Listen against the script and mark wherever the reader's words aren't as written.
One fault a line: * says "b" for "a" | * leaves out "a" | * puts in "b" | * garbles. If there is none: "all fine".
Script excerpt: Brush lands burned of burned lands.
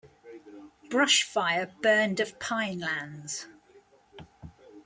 * says "fire" for "lands"
* says "pine" for "burned"